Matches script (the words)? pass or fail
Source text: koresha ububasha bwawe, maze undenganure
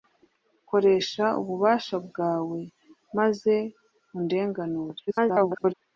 fail